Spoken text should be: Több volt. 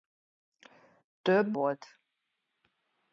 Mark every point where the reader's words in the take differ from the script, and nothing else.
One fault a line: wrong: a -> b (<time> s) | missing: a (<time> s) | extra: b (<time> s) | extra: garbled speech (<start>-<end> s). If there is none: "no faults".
no faults